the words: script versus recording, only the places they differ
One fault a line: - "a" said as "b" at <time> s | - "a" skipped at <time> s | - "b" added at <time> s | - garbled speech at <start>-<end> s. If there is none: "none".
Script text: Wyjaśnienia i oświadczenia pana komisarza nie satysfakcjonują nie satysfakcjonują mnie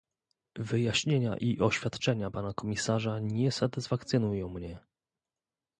- "nie satysfakcjonują" skipped at 4.5 s